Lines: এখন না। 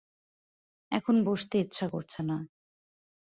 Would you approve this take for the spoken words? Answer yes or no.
no